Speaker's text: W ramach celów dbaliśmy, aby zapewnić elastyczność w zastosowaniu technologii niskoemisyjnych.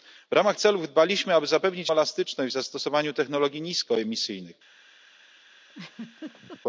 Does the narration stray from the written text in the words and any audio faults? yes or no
yes